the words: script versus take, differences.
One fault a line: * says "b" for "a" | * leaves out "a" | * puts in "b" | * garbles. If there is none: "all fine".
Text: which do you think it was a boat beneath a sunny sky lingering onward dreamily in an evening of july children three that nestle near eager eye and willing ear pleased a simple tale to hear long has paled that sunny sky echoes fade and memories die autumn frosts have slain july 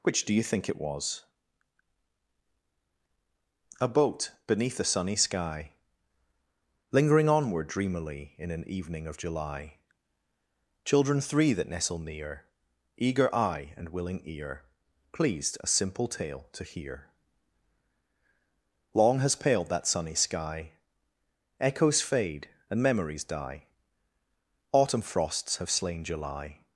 all fine